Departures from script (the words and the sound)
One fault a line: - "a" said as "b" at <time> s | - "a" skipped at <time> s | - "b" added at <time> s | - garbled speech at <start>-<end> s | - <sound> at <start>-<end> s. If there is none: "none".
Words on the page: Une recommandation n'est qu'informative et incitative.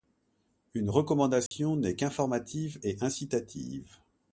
- dropout at 1.5-1.5 s